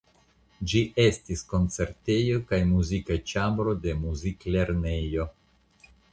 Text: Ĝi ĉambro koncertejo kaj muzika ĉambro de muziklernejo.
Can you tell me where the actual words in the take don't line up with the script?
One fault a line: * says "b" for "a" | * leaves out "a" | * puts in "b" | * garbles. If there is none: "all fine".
* says "estis" for "ĉambro"